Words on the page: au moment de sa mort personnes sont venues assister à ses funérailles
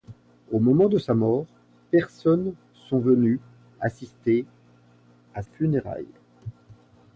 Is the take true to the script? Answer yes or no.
no